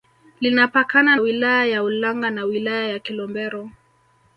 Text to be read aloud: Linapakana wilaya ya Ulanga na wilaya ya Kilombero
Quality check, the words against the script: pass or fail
pass